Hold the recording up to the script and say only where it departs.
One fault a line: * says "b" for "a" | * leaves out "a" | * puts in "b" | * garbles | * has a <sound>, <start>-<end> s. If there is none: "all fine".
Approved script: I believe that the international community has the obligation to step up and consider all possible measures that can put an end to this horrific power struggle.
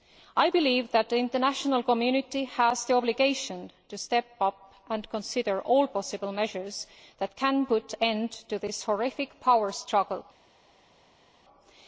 all fine